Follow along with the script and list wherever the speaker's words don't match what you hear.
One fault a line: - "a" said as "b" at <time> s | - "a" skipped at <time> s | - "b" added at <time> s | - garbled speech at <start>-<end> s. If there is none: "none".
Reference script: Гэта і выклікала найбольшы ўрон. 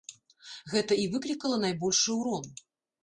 none